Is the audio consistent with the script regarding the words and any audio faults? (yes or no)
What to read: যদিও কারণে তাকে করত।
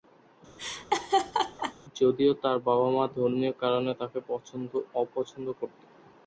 no